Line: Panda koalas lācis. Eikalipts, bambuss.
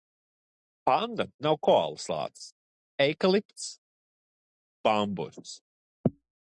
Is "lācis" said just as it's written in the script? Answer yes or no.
yes